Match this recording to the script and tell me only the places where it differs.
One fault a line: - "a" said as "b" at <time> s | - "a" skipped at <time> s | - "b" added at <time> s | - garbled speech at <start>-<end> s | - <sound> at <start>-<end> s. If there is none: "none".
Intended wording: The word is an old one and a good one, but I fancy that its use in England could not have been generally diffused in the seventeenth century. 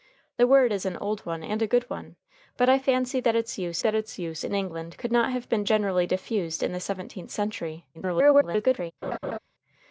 - "that its use" added at 3.8 s
- garbled speech at 7.9-8.9 s
- laugh at 9.0-9.4 s